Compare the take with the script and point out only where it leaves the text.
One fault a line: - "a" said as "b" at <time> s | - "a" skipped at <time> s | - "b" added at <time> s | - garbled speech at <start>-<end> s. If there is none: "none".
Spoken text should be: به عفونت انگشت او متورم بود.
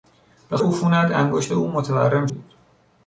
none